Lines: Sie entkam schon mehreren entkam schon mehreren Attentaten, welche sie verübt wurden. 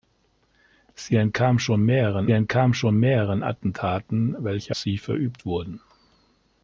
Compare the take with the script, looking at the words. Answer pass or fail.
pass